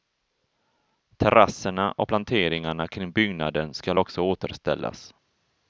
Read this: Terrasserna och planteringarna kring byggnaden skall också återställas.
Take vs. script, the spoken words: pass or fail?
pass